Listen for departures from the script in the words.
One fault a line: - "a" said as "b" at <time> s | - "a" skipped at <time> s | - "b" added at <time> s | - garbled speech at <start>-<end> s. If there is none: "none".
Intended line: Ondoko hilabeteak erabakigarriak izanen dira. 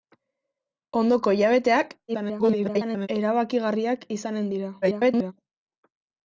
- garbled speech at 2.1-3.1 s
- garbled speech at 4.8-5.3 s